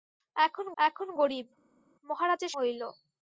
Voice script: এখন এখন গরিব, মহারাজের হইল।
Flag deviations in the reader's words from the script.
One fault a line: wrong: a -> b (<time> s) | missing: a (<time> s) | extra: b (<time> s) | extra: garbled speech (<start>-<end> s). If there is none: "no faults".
no faults